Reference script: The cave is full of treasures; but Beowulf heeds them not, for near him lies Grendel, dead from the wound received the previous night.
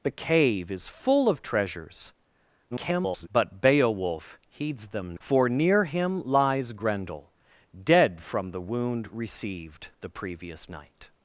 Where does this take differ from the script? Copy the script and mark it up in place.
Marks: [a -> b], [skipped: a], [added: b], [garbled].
The cave is full of treasures; [garbled] but Beowulf heeds them [skipped: not,] for near him lies Grendel, dead from the wound received the previous night.